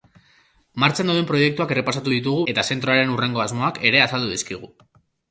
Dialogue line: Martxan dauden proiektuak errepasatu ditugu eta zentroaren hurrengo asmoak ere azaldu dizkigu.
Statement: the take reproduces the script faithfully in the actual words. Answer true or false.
true